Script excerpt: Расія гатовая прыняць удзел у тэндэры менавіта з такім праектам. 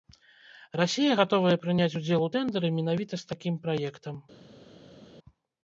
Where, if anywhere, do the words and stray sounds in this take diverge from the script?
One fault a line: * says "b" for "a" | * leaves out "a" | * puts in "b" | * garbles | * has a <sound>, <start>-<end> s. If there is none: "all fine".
all fine